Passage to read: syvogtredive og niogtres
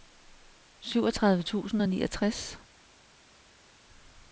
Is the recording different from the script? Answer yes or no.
yes